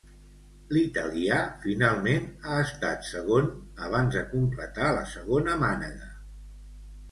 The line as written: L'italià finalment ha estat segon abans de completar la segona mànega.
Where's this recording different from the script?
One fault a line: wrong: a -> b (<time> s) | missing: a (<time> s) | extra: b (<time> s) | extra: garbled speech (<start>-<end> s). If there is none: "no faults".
no faults